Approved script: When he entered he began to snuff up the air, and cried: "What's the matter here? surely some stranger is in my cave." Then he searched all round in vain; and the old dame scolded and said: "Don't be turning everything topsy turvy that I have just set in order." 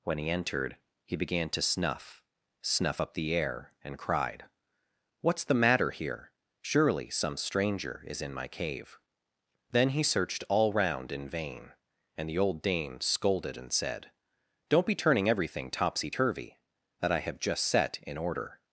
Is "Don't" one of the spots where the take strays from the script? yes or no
no